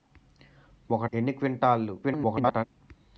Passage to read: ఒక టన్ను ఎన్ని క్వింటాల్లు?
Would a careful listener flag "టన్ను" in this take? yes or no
yes